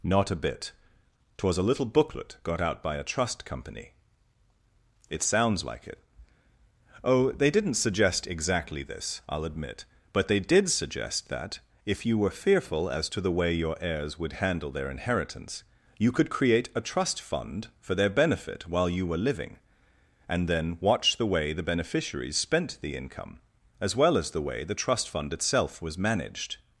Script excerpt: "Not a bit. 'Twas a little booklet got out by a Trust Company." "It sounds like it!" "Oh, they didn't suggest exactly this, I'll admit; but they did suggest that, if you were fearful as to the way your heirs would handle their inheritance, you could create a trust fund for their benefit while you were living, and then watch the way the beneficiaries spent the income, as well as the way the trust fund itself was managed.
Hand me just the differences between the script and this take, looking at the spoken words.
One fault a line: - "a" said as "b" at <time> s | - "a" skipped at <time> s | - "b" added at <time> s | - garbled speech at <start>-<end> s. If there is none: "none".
none